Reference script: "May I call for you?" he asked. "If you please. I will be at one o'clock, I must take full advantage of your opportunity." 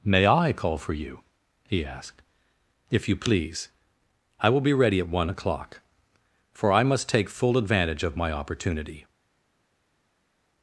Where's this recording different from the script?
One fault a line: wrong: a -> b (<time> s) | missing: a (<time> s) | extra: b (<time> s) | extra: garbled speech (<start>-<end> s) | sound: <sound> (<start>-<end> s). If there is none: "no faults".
extra: ready (4.7 s)
extra: for (6.5 s)
wrong: your -> my (8.2 s)